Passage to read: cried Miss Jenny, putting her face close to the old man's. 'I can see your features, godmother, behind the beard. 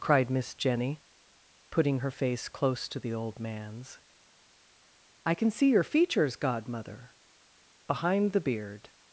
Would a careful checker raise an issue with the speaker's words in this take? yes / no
no